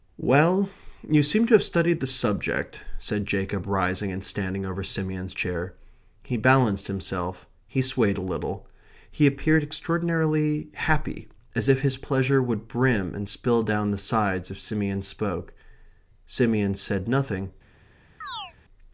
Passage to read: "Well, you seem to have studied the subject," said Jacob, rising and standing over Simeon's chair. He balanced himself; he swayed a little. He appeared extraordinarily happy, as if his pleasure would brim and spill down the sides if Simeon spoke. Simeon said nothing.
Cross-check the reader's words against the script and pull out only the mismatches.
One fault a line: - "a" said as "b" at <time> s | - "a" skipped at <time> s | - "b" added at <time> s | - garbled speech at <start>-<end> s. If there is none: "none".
none